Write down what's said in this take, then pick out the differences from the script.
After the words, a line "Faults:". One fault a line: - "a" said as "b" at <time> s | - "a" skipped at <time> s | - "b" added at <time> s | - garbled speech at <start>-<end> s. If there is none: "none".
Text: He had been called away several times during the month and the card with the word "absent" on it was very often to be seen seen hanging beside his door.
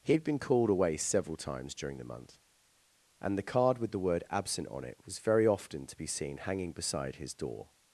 He had been called away several times during the month and the card with the word "absent" on it was very often to be seen hanging beside his door.
Faults:
- "seen" skipped at 6.4 s